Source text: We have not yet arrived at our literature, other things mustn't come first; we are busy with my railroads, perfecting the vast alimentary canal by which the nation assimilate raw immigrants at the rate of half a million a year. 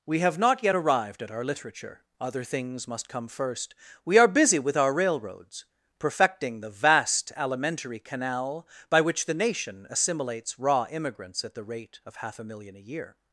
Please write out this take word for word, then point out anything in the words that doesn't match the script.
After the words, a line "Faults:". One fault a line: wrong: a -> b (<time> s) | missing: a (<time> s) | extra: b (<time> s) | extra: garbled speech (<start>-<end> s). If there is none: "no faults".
We have not yet arrived at our literature, other things must come first; we are busy with our railroads, perfecting the vast alimentary canal by which the nation assimilates raw immigrants at the rate of half a million a year.
Faults:
wrong: mustn't -> must (2.9 s)
wrong: my -> our (4.8 s)
wrong: assimilate -> assimilates (9.9 s)